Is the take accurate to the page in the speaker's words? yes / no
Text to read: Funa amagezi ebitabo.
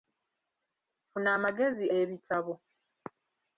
yes